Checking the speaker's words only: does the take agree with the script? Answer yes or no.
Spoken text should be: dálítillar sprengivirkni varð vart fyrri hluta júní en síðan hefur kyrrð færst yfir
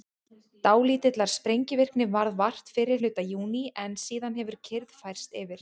yes